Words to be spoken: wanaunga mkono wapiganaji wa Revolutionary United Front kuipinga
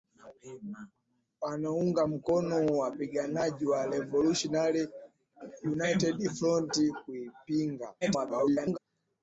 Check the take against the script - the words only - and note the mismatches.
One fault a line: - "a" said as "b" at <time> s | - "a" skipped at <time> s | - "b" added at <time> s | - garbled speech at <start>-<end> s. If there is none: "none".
- garbled speech at 8.0-8.8 s